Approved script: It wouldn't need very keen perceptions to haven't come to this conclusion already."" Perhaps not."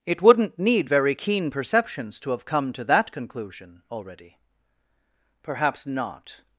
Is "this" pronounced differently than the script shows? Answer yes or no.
yes